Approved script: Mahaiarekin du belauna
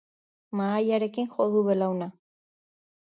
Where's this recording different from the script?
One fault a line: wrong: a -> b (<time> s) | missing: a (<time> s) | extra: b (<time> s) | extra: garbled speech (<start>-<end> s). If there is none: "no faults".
extra: jo (1.4 s)